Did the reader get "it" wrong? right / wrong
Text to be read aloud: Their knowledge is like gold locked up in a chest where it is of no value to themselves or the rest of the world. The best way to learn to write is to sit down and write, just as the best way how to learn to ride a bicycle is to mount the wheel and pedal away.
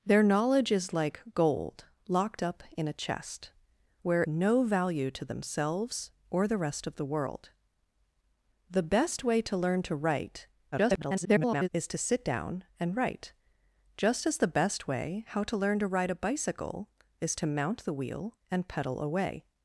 wrong